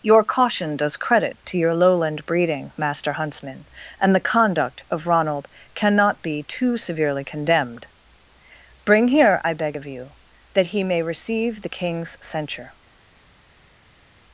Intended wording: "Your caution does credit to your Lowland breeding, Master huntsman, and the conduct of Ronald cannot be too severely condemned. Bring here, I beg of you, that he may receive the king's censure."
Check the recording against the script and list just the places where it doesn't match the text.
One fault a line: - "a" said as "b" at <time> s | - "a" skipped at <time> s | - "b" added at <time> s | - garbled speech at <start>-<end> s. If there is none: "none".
none